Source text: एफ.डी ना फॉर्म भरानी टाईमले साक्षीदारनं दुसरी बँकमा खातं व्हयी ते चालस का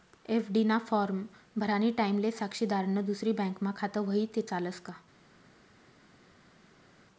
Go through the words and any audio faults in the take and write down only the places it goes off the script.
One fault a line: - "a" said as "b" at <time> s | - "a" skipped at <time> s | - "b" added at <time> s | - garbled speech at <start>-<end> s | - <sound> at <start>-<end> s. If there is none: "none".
none